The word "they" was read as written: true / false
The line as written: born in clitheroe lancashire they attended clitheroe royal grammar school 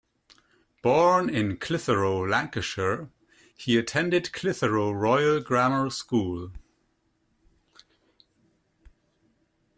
false